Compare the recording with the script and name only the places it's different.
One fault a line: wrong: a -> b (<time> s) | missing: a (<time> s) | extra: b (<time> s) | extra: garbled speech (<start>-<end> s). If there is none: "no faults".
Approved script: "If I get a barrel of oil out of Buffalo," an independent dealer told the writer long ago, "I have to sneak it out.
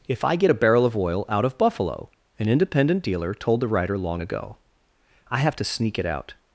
no faults